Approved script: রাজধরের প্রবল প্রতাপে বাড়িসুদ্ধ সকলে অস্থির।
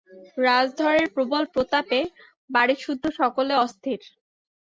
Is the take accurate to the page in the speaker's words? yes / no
yes